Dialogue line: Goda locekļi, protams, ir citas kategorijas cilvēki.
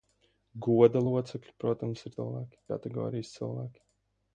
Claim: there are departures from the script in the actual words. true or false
true